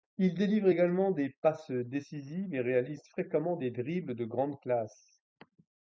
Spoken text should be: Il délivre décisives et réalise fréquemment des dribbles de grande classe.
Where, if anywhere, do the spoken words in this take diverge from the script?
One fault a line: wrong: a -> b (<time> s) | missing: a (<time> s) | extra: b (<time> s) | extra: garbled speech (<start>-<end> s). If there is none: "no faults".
extra: également des passes (0.7 s)